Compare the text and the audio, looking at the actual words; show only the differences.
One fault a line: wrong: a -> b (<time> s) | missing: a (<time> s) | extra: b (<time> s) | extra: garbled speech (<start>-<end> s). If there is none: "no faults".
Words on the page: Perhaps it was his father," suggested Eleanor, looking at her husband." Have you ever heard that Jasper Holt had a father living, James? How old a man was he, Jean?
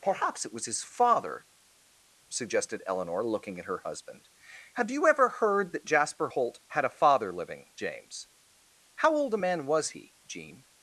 no faults